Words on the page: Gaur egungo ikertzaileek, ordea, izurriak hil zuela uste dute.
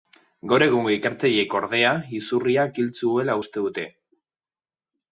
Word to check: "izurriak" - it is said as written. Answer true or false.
true